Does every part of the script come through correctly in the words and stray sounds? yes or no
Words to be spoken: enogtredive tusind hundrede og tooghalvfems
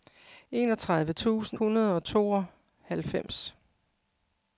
yes